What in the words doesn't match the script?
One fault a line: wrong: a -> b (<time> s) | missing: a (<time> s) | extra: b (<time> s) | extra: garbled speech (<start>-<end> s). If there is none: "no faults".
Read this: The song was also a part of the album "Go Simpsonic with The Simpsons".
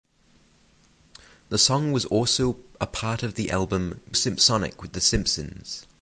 missing: Go (4.0 s)